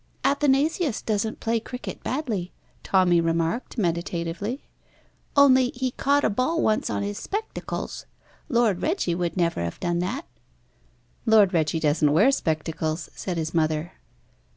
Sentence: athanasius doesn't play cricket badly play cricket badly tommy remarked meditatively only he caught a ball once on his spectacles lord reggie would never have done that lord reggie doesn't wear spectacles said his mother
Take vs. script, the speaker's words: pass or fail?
fail